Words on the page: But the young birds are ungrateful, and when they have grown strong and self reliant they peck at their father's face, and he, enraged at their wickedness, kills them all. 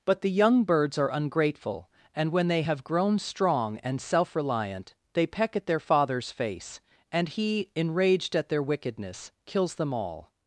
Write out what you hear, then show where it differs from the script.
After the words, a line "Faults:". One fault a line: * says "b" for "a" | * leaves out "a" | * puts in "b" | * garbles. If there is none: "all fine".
But the young birds are ungrateful, and when they have grown strong and self reliant they peck at their father's face, and he, enraged at their wickedness, kills them all.
Faults:
all fine